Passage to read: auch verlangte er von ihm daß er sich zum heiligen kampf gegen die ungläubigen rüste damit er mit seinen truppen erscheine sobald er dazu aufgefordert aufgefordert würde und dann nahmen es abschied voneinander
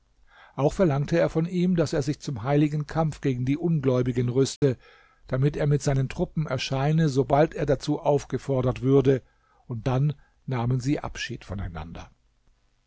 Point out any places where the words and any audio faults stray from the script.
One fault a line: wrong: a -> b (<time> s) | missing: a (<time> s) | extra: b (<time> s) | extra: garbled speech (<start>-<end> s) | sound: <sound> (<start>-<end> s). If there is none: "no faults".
sound: dropout (4.6-4.6 s)
missing: aufgefordert (8.8 s)
wrong: es -> sie (10.8 s)